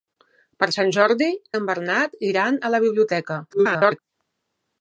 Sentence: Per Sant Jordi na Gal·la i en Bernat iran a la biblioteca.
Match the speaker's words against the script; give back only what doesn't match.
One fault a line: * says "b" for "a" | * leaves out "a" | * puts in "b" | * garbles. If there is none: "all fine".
* leaves out "na Gal·la"
* garbles